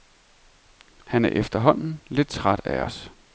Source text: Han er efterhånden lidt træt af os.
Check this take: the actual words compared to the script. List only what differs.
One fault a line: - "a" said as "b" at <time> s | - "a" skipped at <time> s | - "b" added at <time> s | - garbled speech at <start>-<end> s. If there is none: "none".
none